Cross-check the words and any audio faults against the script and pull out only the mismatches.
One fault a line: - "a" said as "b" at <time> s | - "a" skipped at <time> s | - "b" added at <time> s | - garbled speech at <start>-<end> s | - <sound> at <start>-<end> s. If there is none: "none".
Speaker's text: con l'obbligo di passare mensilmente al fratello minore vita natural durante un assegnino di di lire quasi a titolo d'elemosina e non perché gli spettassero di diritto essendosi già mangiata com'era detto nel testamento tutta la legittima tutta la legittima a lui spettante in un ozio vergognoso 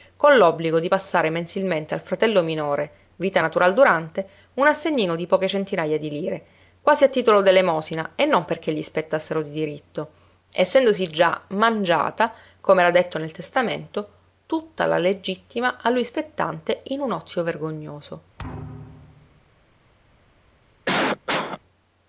- "poche centinaja" added at 5.2 s
- "tutta la legittima" skipped at 15.8 s
- thud at 18.4-19.4 s
- cough at 20.9-21.6 s